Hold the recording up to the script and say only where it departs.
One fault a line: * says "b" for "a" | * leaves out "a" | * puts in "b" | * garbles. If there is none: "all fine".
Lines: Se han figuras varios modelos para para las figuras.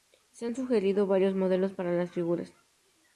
* says "sugerido" for "figuras"
* leaves out "para"